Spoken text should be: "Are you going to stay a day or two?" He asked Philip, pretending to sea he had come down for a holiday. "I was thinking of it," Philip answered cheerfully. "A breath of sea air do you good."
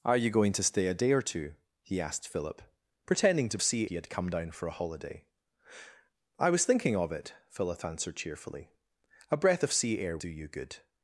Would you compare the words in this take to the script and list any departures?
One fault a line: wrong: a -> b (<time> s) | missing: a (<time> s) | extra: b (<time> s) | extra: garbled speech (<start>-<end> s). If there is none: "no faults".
no faults